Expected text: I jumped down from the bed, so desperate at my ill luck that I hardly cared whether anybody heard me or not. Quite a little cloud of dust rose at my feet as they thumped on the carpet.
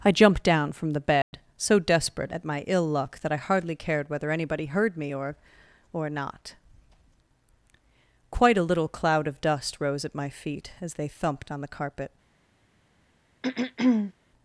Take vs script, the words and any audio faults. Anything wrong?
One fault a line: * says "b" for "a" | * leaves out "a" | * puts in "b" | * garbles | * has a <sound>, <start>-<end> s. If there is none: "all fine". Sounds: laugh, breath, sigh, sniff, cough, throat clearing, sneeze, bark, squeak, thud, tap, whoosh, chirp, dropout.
* has a dropout, 1.2-1.3 s
* puts in "or"
* has a throat clearing, 13.4-14.1 s